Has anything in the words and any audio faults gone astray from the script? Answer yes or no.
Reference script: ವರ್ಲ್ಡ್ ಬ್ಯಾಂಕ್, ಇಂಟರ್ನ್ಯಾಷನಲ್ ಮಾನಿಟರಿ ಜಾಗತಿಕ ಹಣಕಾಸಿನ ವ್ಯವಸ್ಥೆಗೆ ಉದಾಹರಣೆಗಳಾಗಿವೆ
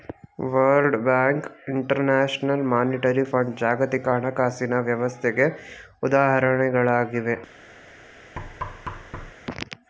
yes